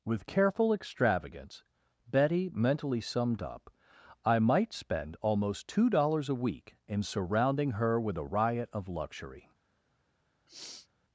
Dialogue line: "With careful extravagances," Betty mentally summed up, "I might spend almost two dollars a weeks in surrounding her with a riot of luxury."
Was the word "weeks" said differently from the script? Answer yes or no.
yes